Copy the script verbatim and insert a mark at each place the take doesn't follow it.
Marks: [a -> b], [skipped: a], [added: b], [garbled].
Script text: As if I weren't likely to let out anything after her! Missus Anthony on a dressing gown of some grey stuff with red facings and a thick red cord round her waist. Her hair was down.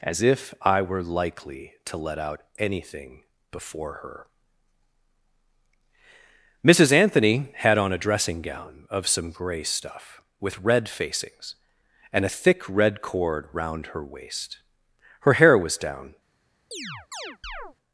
As if I [weren't -> were] likely to let out anything [after -> before] her! Missus Anthony [added: had] on a dressing gown of some grey stuff with red facings and a thick red cord round her waist. Her hair was down.